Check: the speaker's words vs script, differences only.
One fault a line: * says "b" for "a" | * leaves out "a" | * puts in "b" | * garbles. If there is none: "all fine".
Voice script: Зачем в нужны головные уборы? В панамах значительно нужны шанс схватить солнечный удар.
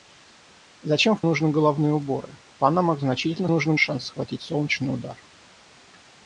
all fine